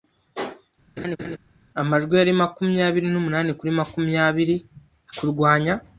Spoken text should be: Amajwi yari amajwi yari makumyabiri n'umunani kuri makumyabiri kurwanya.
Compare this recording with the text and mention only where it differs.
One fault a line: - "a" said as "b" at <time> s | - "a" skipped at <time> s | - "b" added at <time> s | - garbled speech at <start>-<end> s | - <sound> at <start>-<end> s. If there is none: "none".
- laugh at 1.0-1.4 s
- "amajwi yari" skipped at 2.3 s